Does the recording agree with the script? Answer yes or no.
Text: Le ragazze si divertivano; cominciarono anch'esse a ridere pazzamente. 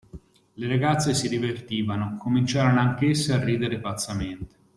yes